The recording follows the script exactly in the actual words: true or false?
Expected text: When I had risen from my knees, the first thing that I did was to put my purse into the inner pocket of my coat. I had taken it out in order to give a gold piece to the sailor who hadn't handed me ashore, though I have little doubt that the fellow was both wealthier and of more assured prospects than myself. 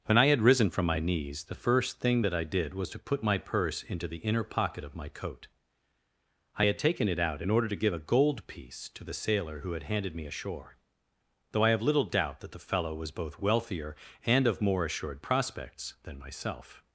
false